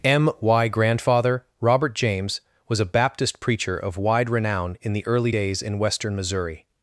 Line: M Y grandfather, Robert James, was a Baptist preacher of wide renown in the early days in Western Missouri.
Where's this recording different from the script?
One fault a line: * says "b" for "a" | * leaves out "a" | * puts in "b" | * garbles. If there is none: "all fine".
all fine